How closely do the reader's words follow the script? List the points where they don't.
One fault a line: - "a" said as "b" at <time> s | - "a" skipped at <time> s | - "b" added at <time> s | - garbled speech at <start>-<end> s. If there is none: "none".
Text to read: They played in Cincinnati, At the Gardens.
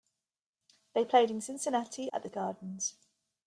none